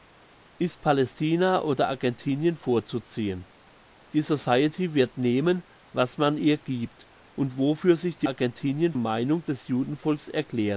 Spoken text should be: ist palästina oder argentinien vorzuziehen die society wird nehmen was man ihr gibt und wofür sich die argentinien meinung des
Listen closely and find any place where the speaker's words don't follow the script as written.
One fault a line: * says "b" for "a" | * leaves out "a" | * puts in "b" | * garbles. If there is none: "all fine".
all fine